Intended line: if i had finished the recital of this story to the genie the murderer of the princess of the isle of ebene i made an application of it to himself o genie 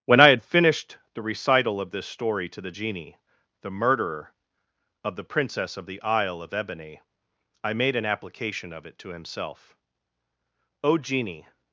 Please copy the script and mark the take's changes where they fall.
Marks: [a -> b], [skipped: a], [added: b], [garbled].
[if -> when] i had finished the recital of this story to the genie the murderer of the princess of the isle of ebene i made an application of it to himself o genie